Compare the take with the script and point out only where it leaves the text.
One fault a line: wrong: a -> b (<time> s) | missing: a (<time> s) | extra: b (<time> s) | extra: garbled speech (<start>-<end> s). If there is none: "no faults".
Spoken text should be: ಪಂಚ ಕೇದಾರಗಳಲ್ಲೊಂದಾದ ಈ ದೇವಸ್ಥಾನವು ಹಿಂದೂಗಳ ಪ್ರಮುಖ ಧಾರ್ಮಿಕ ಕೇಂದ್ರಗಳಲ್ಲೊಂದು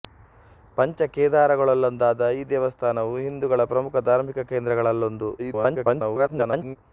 extra: garbled speech (5.4-6.8 s)